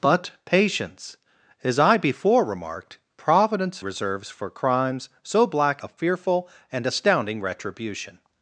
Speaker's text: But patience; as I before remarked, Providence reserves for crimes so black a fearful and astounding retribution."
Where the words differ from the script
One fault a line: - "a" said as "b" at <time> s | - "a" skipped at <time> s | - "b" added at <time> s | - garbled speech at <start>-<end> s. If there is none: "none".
none